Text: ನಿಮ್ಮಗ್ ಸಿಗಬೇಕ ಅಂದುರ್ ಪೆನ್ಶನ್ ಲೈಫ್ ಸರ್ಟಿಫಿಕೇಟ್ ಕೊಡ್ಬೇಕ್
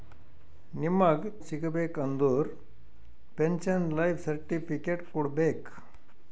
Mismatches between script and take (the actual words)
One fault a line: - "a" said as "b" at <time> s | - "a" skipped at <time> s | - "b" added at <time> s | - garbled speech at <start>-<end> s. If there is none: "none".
none